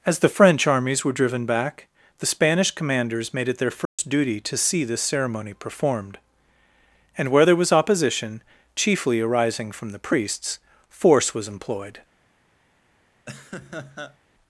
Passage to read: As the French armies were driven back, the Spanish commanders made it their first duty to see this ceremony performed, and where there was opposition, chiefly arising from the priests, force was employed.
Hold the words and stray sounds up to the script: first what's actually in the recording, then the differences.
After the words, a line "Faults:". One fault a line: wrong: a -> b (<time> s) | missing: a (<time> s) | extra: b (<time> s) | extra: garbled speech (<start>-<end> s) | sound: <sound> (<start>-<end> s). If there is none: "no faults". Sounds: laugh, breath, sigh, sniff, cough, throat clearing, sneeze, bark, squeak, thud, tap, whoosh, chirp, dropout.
As the French armies were driven back, the Spanish commanders made it their first duty to see this ceremony performed, and where there was opposition, chiefly arising from the priests, force was employed.
Faults:
sound: dropout (3.8-4.0 s)
sound: laugh (13.3-14.2 s)